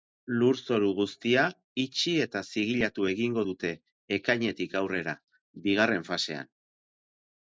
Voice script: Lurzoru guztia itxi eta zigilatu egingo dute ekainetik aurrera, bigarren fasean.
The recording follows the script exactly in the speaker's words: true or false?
true